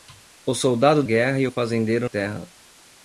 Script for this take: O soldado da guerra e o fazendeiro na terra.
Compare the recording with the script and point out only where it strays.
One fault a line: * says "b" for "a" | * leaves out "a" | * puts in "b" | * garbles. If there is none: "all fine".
* leaves out "da"
* leaves out "na"